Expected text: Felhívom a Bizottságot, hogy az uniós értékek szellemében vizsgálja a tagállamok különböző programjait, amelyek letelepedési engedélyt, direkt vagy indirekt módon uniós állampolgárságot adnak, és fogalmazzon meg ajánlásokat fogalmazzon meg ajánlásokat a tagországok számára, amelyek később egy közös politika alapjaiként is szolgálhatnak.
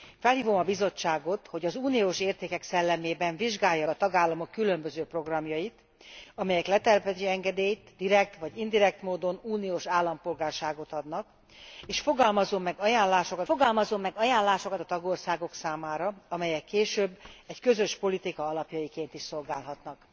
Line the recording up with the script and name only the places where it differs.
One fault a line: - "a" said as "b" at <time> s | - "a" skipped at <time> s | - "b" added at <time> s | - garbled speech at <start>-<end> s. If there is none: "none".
none